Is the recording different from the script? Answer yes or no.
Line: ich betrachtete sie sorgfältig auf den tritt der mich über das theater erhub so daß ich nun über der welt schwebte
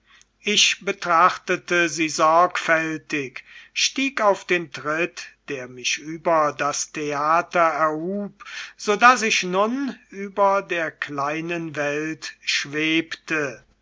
yes